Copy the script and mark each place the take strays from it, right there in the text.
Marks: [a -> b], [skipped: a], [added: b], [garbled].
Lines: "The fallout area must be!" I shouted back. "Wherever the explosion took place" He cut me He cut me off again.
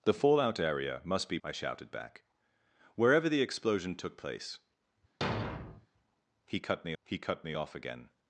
"The fallout area must be!" I shouted back. "Wherever the explosion took place" He cut me He cut me off again.